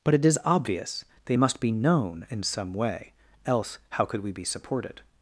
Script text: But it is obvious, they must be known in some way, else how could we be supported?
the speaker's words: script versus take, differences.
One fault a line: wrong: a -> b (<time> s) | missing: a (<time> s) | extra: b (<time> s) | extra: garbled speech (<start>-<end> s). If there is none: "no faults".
no faults